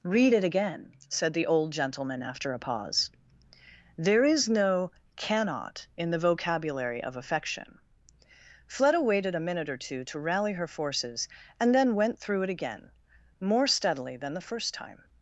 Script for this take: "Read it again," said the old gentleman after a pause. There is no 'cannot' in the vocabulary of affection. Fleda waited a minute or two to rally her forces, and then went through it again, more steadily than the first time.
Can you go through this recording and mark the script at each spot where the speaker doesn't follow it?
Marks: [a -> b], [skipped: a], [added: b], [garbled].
"Read it again," said the old gentleman after a pause. There is no 'cannot' in the vocabulary of affection. Fleda waited a minute or two to rally her forces, and then went through it again, more steadily than the first time.